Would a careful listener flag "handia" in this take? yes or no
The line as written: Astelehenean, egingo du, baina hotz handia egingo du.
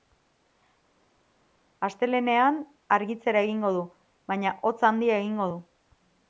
no